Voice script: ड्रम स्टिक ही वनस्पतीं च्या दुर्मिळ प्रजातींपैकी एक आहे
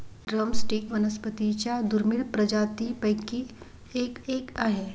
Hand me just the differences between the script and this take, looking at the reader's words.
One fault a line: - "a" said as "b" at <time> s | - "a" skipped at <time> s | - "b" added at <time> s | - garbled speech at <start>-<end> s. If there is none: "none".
- "ही" skipped at 0.9 s
- "एक" added at 4.3 s